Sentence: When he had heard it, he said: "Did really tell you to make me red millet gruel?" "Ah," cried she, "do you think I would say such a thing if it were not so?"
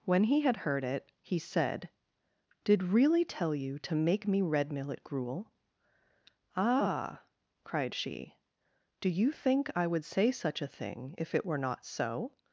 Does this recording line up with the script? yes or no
yes